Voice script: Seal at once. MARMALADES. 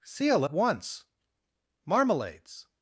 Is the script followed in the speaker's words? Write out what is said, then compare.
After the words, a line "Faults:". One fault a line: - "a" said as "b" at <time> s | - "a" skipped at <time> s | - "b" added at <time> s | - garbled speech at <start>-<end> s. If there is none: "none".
Seal at once. MARMALADES.
Faults:
none